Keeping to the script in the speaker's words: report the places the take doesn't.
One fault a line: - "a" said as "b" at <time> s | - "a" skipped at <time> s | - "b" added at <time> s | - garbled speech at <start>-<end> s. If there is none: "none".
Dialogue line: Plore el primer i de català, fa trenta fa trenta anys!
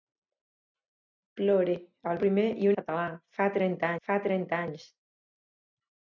none